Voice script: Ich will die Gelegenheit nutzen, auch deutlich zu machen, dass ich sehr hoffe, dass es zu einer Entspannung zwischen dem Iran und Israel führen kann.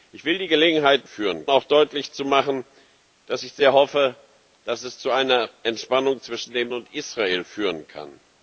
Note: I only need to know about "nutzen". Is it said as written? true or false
false